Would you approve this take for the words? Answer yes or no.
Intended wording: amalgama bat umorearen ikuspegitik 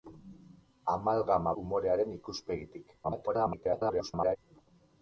no